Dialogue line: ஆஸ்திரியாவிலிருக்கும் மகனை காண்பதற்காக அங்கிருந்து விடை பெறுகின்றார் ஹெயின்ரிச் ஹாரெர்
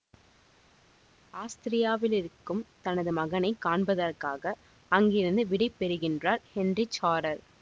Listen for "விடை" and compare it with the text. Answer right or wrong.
right